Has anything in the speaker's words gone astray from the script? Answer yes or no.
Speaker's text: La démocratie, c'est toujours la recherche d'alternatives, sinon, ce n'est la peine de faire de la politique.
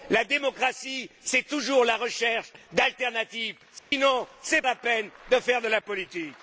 no